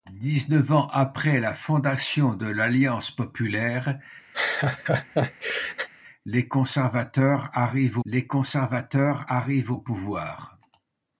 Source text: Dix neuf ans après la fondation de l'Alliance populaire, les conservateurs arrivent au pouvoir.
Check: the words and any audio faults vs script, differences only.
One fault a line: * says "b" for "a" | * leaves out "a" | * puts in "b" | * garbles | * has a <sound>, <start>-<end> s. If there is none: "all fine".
* has a laugh, 4.3-5.9 s
* puts in "les conservateurs arrivent"